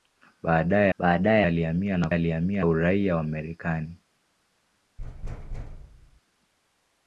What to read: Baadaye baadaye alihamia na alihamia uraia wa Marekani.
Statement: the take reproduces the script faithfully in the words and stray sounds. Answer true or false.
false